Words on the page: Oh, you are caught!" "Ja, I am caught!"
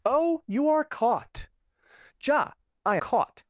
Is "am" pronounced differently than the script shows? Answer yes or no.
yes